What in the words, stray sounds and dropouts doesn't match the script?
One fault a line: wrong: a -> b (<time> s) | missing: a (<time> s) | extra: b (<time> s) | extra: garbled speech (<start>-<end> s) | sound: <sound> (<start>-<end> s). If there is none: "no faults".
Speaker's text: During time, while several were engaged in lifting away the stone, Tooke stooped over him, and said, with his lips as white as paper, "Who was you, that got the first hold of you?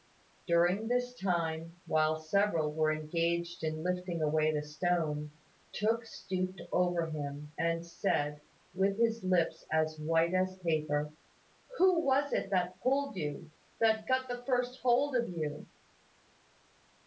extra: this (0.9 s)
extra: it that pulled (12.3 s)